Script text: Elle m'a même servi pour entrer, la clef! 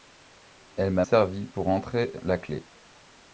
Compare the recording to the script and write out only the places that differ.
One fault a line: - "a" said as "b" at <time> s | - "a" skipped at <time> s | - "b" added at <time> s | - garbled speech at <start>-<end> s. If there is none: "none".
- "même" skipped at 1.1 s